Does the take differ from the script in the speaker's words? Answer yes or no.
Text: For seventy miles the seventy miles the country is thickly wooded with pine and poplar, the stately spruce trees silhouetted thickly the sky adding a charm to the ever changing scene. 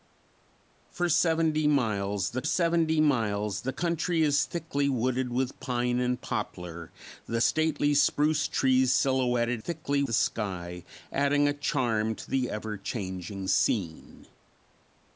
no